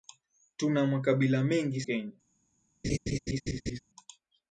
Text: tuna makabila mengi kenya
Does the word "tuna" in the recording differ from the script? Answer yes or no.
no